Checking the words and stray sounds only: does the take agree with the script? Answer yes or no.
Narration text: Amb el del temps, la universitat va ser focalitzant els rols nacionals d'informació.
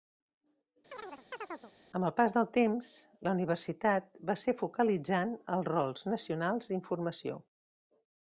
no